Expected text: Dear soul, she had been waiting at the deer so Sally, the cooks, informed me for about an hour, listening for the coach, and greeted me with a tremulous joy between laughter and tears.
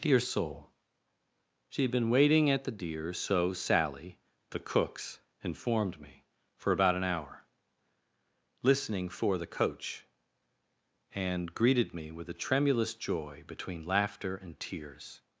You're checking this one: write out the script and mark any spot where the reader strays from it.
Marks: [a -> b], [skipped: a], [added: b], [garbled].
Dear soul, she had been waiting at the deer so Sally, the cooks, informed me for about an hour, listening for the coach, and greeted me with a tremulous joy between laughter and tears.